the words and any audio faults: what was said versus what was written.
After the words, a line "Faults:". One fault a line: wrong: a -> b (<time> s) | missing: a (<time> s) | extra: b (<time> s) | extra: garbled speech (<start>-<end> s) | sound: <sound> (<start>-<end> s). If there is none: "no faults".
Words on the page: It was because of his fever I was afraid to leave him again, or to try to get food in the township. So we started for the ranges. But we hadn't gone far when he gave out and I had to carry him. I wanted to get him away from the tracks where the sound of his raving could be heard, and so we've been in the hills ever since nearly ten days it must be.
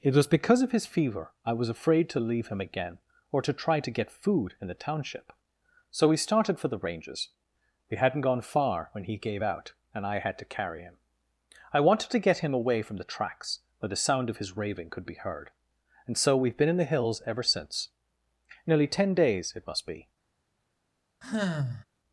It was because of his fever I was afraid to leave him again, or to try to get food in the township. So we started for the ranges. we hadn't gone far when he gave out and I had to carry him. I wanted to get him away from the tracks where the sound of his raving could be heard, and so we've been in the hills ever since nearly ten days it must be.
Faults:
missing: But (7.3 s)
sound: sigh (21.2-21.8 s)